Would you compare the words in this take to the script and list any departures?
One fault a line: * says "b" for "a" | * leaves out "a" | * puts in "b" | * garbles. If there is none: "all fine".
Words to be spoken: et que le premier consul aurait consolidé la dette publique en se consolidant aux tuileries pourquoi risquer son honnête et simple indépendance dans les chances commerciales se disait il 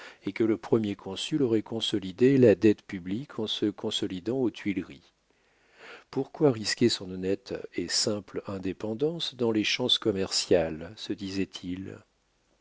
all fine